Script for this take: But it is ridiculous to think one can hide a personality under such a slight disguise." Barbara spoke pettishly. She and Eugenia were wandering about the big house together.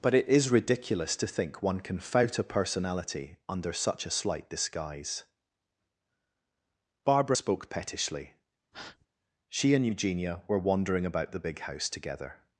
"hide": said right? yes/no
no